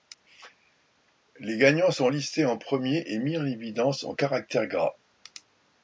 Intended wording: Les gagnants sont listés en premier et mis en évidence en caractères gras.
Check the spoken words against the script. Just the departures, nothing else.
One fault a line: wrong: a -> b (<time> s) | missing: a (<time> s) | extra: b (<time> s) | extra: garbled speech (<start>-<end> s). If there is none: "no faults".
no faults